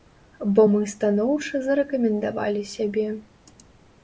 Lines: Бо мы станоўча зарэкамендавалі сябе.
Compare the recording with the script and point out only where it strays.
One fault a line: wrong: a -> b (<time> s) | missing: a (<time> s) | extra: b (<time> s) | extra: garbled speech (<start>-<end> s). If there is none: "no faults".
no faults